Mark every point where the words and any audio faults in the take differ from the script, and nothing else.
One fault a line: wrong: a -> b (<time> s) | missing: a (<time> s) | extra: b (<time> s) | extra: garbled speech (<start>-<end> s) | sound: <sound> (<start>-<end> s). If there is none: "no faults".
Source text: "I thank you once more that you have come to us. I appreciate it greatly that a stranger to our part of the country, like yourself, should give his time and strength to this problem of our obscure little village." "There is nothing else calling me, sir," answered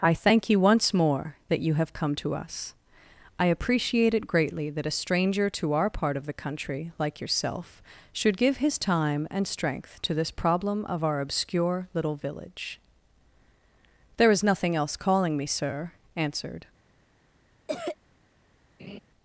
sound: cough (17.7-18.0 s)
sound: laugh (18.8-19.0 s)